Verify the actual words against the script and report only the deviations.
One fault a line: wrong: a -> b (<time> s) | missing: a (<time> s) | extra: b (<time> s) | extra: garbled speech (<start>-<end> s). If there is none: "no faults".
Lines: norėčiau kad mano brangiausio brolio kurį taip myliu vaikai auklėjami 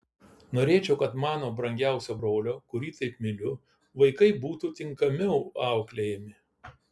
extra: būtų tinkamiau (4.5 s)